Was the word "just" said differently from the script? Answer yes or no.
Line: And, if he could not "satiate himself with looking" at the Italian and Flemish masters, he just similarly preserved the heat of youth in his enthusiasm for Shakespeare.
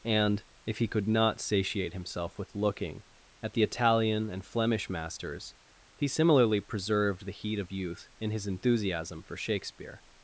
yes